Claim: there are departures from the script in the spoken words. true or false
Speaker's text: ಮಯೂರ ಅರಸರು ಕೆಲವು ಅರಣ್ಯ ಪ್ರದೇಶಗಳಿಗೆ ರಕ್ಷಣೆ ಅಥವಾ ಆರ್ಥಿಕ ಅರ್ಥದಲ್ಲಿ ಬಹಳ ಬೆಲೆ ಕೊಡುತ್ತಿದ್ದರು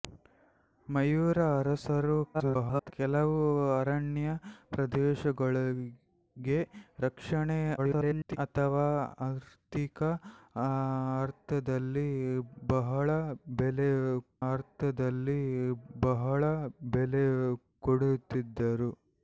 true